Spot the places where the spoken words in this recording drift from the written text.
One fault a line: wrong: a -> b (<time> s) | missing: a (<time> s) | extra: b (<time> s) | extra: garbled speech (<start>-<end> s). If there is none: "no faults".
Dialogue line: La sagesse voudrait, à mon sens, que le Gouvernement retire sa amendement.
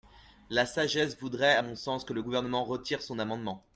wrong: sa -> son (3.0 s)